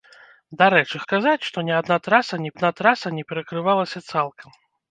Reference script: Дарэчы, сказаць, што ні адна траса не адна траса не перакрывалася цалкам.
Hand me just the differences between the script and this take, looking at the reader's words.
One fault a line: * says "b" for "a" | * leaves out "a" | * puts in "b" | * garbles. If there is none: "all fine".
all fine